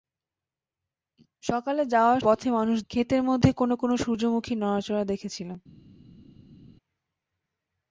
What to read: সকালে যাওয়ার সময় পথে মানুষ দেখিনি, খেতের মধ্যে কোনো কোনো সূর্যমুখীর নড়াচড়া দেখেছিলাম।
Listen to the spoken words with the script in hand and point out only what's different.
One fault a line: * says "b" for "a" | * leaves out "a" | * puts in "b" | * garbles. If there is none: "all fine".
* leaves out "সময়"
* leaves out "দেখিনি"